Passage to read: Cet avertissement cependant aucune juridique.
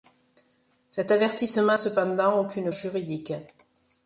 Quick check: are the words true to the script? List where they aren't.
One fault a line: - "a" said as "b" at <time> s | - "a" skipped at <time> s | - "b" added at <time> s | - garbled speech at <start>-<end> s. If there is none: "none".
none